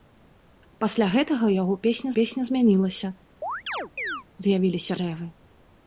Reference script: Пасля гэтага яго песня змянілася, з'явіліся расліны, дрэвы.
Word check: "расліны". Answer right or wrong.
wrong